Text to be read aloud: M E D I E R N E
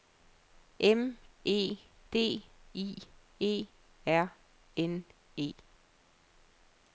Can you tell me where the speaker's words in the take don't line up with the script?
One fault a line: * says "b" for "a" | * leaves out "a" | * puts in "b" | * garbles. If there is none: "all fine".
all fine